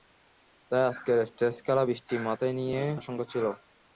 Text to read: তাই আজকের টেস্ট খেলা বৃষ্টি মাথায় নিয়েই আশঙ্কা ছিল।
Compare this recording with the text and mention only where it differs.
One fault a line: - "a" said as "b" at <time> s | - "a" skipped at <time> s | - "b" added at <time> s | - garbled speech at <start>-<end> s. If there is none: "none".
none